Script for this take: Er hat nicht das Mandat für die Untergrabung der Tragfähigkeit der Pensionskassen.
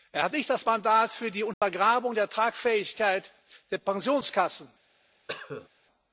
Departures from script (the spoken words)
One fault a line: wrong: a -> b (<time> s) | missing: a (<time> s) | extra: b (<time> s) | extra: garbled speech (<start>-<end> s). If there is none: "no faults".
no faults